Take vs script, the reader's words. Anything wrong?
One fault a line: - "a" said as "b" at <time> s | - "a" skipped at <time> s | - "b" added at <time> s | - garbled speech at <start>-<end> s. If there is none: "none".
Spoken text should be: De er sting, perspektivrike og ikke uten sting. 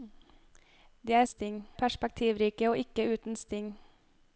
none